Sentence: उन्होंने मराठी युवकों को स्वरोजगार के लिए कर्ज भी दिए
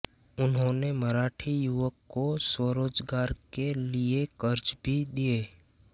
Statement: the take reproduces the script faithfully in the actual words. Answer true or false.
true